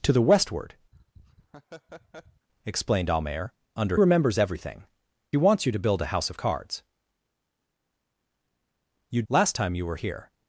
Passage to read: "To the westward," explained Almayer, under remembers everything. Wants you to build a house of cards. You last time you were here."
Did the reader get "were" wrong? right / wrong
right